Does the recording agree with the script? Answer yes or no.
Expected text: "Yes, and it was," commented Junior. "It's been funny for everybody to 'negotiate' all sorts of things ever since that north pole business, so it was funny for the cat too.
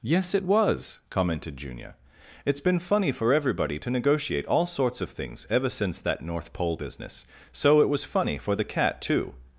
no